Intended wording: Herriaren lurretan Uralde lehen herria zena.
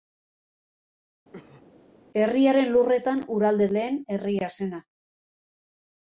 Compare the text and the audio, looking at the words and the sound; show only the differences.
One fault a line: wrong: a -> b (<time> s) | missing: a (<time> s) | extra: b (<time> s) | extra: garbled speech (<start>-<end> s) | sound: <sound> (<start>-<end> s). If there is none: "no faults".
sound: cough (1.3-1.6 s)